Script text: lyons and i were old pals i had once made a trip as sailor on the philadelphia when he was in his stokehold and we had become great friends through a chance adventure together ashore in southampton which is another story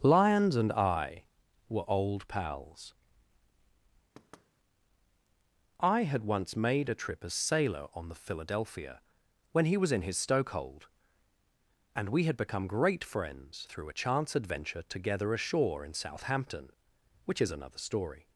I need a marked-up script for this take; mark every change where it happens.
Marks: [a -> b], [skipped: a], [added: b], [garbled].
lyons and i were old pals i had once made a trip as sailor on the philadelphia when he was in his stokehold and we had become great friends through a chance adventure together ashore in southampton which is another story